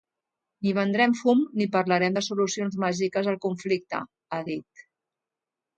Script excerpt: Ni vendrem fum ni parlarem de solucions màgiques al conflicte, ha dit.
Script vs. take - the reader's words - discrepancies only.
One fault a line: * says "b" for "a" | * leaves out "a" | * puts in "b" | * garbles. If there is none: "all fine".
all fine